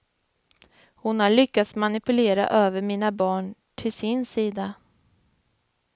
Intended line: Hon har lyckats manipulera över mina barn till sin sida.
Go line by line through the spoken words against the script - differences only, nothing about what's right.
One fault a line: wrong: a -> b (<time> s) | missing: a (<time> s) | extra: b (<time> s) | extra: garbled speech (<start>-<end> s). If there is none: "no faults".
no faults